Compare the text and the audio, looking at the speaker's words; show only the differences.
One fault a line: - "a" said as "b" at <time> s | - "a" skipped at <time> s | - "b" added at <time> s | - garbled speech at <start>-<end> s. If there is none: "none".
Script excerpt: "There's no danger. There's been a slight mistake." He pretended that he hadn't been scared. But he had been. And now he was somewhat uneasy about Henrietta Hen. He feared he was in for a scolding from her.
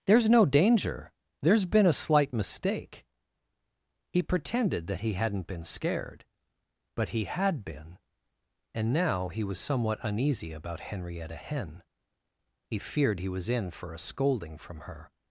none